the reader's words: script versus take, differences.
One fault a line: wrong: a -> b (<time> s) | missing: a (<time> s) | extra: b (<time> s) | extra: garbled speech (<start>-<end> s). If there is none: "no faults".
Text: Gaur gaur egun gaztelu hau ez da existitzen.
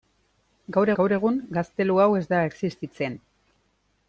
no faults